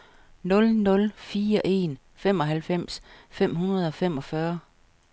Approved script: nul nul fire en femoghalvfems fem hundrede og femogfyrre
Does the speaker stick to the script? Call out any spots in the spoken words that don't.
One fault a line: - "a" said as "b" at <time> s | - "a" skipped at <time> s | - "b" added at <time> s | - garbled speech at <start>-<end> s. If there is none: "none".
none